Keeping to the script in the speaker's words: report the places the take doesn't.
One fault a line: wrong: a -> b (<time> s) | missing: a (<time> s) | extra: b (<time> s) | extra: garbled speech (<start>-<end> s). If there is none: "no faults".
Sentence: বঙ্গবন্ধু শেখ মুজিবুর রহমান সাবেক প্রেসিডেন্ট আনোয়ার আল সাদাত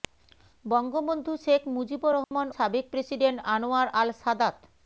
no faults